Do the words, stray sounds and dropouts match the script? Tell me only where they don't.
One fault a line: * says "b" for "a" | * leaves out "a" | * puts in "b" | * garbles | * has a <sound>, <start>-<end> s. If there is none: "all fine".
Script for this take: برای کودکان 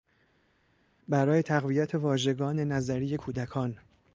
* puts in "تقویت واژگان نظری"